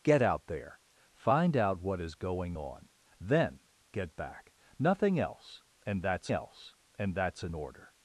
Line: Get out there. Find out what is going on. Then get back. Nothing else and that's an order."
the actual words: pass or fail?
fail